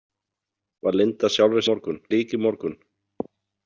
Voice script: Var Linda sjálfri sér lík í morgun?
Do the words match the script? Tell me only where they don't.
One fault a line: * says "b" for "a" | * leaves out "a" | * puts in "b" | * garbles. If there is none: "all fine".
* says "morgun" for "sér"